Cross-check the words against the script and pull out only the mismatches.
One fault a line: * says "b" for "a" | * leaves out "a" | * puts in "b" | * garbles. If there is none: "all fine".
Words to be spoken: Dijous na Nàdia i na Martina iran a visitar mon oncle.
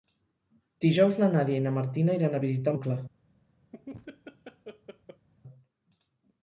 * leaves out "mon"